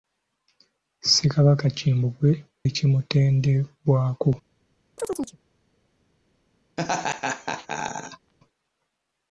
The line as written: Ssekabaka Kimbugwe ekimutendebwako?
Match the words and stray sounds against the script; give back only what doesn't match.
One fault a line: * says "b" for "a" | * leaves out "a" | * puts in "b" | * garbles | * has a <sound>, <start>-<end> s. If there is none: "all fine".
* has a chirp, 5.0-5.4 s
* has a laugh, 6.8-8.3 s